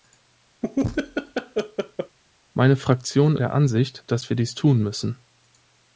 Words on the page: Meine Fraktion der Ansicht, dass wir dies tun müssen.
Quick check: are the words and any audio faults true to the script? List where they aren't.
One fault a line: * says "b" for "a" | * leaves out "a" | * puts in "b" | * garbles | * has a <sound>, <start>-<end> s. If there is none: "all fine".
* has a laugh, 0.6-2.2 s